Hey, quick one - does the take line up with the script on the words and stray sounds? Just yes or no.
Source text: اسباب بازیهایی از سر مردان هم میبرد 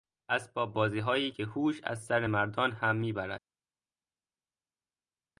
no